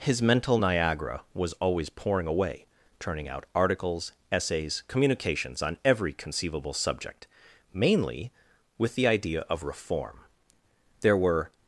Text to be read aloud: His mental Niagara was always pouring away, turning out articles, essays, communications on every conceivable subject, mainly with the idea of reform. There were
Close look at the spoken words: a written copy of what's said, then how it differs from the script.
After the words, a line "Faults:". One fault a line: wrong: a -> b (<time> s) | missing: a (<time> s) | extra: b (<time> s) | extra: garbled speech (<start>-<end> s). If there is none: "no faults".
His mental Niagara was always pouring away, turning out articles, essays, communications on every conceivable subject, mainly with the idea of reform. There were
Faults:
no faults